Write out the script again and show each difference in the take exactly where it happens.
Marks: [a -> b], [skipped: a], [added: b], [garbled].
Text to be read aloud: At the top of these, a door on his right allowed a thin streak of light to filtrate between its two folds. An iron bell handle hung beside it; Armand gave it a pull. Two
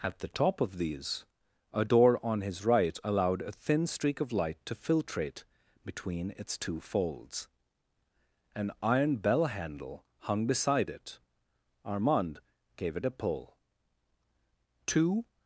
At the top of these, a door on his right allowed a thin streak of light to filtrate between its two folds. An iron bell handle hung beside it; Armand gave it a pull. Two